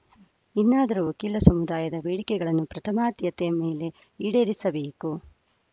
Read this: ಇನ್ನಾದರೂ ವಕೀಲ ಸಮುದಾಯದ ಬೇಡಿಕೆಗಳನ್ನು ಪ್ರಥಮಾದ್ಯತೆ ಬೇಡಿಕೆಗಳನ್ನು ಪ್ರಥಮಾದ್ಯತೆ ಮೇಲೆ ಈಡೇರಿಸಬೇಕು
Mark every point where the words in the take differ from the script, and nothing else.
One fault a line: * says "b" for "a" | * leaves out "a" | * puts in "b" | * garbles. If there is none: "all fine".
* leaves out "ಬೇಡಿಕೆಗಳನ್ನು ಪ್ರಥಮಾದ್ಯತೆ"